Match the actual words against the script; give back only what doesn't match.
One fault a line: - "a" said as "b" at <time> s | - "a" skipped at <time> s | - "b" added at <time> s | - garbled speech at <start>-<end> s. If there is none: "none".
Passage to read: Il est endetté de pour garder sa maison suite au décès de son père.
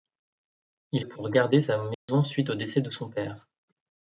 - "est endetté de" skipped at 1.1 s